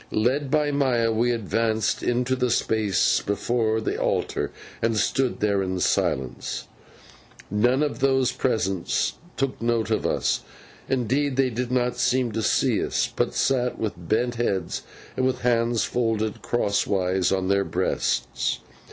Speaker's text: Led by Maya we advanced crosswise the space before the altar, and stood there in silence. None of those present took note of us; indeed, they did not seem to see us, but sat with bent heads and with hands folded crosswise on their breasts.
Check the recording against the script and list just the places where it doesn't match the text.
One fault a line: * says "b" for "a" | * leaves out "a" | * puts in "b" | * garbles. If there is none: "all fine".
* says "into" for "crosswise"